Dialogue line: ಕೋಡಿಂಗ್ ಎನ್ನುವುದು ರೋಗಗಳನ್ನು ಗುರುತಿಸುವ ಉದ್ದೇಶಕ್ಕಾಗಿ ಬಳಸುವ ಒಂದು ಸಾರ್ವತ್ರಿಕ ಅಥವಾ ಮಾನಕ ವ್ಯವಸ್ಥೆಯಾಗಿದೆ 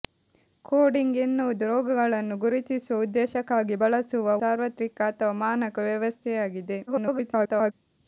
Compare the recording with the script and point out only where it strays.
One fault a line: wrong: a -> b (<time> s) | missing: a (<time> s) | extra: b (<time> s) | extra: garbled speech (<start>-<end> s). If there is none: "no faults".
missing: ಒಂದು (4.4 s)
extra: garbled speech (6.9-7.7 s)